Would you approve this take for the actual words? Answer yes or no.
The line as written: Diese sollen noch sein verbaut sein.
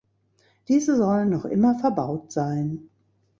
no